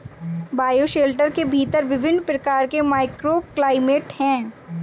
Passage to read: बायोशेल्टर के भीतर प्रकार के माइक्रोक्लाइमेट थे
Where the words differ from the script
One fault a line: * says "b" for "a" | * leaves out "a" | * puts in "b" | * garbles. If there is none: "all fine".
* puts in "विभिन्न"
* says "हैं" for "थे"